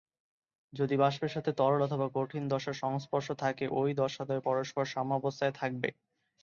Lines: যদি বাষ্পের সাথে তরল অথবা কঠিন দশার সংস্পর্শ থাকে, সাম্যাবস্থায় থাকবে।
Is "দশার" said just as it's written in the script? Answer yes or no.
yes